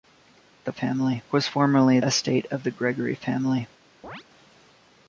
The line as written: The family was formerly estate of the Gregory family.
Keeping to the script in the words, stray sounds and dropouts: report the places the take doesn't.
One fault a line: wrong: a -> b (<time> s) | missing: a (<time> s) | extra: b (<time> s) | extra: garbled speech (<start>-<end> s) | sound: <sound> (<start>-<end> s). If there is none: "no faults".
sound: chirp (4.0-4.2 s)